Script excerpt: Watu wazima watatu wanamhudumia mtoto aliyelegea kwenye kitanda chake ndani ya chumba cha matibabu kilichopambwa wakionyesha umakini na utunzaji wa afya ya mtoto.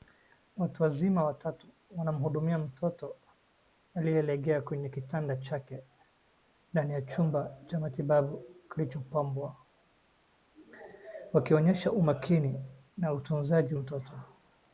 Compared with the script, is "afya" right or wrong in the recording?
wrong